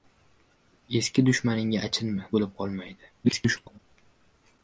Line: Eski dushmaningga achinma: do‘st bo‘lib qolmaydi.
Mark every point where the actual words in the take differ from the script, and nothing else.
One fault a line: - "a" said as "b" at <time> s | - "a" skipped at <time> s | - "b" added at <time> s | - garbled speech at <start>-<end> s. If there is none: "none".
- "do‘st" skipped at 2.3 s
- garbled speech at 3.2-3.8 s